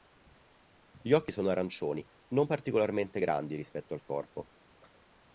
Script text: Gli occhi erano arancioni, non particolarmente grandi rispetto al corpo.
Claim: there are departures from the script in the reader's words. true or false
true